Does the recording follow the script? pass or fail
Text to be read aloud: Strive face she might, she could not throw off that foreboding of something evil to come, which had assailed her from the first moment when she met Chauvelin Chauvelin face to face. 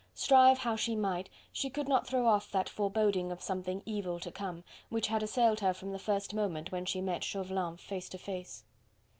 fail